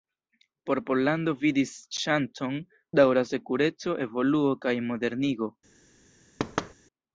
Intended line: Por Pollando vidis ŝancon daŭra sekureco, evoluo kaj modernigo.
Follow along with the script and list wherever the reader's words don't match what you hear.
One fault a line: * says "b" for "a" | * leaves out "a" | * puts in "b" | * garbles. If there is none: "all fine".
all fine